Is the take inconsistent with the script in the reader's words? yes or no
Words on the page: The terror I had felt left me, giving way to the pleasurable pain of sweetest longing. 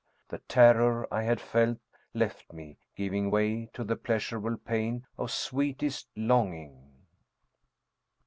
no